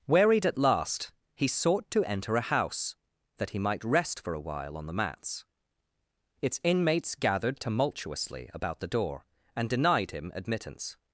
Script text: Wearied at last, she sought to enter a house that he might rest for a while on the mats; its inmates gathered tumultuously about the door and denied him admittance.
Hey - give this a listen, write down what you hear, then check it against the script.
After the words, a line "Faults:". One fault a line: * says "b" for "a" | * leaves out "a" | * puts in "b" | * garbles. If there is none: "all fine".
Wearied at last, he sought to enter a house that he might rest for a while on the mats; its inmates gathered tumultuously about the door and denied him admittance.
Faults:
* says "he" for "she"